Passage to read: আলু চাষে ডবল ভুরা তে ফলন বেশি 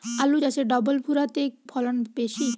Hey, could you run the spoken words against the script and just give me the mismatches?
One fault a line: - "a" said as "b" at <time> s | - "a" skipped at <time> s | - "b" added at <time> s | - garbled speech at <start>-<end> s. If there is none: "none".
none